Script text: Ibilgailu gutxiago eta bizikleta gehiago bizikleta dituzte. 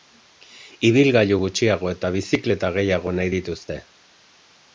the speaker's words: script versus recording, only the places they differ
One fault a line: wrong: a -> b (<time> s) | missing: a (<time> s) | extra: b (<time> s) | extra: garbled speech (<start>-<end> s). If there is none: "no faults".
wrong: bizikleta -> nahi (3.2 s)